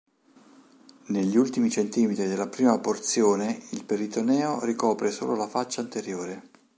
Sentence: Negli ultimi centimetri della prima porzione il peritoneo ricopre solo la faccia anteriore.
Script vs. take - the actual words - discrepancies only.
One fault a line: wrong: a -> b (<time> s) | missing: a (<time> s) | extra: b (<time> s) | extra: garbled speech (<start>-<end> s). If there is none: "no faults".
no faults